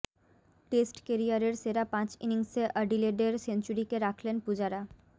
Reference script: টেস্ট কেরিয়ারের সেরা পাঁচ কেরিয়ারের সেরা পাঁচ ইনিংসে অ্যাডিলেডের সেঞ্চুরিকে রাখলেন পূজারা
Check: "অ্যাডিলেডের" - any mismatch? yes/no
no